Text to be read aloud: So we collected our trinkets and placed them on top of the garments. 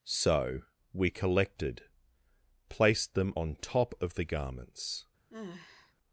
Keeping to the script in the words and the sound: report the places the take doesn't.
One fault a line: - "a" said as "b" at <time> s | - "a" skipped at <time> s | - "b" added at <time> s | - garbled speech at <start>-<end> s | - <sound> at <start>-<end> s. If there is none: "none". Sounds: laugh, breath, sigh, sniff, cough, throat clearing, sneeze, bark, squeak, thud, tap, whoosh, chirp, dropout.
- "our trinkets and" skipped at 1.8 s
- sigh at 5.3-5.9 s